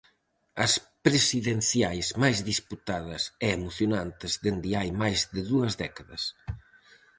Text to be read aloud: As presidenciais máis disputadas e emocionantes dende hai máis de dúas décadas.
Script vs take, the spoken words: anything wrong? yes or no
no